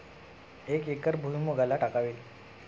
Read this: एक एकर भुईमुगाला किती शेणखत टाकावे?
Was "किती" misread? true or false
true